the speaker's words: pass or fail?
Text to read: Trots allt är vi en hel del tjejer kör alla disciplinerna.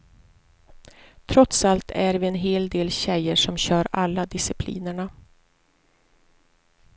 fail